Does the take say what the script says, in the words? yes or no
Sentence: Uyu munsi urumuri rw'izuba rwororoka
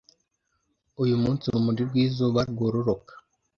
yes